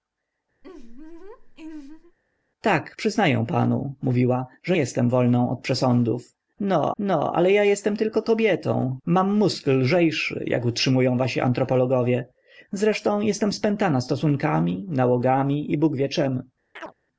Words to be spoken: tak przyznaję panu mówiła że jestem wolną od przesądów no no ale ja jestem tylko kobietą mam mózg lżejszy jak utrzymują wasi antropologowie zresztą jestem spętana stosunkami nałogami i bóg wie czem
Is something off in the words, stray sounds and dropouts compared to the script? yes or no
yes